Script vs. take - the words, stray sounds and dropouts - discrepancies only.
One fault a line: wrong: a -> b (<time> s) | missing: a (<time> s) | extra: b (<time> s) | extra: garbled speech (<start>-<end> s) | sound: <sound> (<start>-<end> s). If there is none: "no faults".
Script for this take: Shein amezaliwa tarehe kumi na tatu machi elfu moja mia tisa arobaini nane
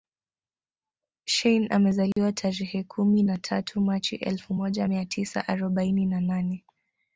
sound: dropout (2.1-2.2 s)
extra: na (6.1 s)